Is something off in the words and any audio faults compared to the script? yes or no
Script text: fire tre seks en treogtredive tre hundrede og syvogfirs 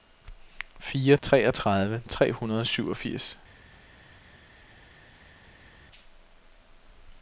yes